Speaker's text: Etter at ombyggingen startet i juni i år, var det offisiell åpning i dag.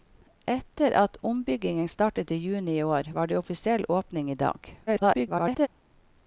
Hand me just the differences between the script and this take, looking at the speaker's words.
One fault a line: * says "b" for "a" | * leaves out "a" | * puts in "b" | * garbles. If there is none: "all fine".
* garbles